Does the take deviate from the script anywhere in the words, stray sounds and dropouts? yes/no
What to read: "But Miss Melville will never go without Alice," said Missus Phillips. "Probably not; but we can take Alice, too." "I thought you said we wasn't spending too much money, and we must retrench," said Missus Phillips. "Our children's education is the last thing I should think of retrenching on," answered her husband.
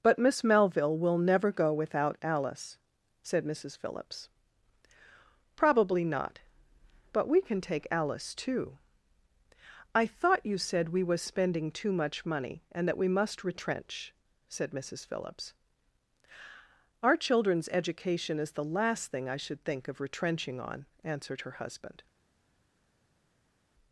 yes